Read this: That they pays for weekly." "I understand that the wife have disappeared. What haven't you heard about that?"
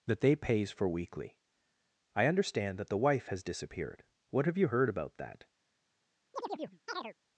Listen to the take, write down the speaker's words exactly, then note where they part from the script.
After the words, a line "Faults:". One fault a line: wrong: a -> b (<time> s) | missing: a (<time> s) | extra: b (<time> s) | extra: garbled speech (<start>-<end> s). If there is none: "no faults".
That they pays for weekly." "I understand that the wife has disappeared. What have you heard about that?"
Faults:
wrong: have -> has (3.3 s)
wrong: haven't -> have (4.5 s)